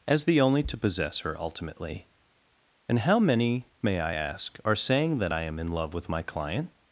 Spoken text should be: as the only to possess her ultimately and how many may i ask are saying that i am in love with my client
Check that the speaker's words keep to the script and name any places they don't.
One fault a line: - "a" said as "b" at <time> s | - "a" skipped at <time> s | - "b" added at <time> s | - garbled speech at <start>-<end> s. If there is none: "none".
none